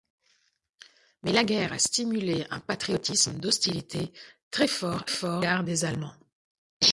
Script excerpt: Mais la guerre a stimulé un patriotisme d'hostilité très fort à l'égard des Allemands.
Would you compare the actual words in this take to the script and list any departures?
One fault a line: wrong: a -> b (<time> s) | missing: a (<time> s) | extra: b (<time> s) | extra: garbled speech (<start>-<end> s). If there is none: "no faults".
no faults